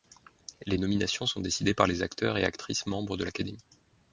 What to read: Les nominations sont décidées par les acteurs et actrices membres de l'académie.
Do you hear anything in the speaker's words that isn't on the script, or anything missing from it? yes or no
no